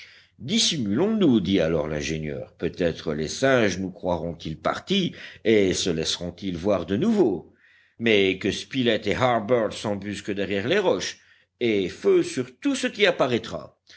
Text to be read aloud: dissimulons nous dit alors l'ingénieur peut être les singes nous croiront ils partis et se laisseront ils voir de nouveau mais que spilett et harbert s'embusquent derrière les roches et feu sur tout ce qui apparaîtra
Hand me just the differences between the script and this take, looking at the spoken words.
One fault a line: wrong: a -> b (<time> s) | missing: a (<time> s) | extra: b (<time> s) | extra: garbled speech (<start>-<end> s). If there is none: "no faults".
no faults